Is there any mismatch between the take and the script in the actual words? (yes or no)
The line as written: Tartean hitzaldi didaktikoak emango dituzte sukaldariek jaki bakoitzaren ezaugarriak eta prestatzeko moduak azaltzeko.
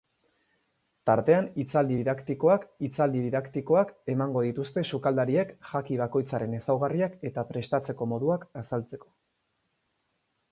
yes